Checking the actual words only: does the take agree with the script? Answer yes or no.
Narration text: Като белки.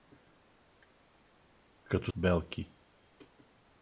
yes